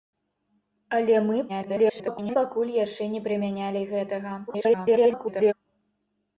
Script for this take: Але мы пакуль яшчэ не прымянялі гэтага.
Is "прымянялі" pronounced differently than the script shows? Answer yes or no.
no